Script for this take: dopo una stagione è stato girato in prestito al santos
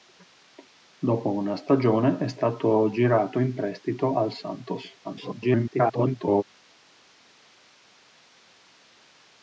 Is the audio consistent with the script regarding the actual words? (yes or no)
no